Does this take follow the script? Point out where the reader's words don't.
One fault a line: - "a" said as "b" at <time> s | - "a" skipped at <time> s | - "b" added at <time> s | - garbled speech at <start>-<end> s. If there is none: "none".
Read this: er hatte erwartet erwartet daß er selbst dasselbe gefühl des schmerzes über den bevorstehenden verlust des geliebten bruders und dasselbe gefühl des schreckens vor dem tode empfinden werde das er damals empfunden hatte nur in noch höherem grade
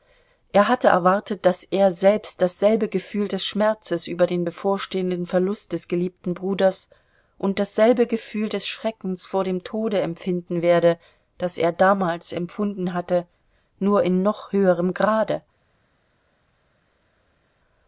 - "erwartet" skipped at 1.4 s